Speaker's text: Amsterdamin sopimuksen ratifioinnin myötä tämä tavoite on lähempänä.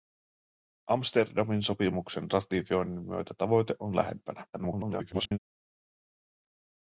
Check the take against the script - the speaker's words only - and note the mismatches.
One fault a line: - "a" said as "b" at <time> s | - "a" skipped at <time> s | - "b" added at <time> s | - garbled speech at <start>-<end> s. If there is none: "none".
- "tämä" skipped at 3.3 s
- garbled speech at 4.5-5.4 s